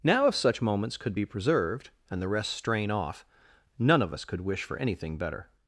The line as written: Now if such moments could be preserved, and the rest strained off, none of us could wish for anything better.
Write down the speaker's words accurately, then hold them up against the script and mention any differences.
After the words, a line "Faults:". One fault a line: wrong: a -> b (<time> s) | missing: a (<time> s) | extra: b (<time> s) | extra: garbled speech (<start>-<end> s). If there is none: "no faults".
Now if such moments could be preserved, and the rest strain off, none of us could wish for anything better.
Faults:
wrong: strained -> strain (2.5 s)